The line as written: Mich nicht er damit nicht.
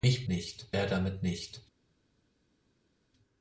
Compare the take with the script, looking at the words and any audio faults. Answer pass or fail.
pass